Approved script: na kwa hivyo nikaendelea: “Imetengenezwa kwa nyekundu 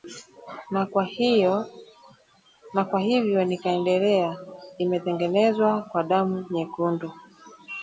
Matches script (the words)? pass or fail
fail